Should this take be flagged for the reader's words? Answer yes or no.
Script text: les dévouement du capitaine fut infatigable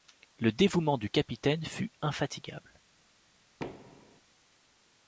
yes